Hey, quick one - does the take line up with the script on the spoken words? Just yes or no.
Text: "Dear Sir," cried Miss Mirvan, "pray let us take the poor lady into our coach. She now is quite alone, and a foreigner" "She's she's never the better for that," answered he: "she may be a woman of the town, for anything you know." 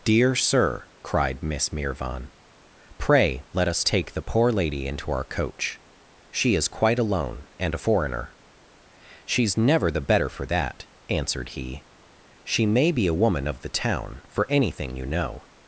no